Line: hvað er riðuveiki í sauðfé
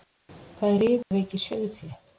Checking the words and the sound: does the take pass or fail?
fail